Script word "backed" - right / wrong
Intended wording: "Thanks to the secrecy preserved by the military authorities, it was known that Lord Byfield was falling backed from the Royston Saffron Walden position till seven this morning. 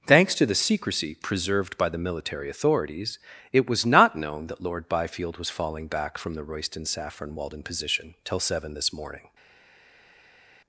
wrong